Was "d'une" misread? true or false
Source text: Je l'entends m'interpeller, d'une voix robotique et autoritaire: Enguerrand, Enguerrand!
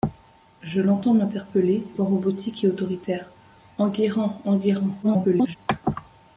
true